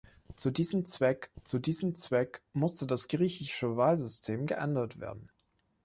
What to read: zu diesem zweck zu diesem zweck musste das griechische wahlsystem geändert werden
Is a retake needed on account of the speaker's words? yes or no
no